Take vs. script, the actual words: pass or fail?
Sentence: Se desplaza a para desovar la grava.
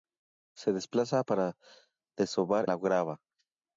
pass